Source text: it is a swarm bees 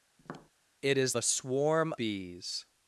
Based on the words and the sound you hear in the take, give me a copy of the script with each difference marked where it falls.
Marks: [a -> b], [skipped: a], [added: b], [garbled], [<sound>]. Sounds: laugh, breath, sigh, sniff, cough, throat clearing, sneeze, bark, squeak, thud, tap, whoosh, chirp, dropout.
[tap] it is a swarm bees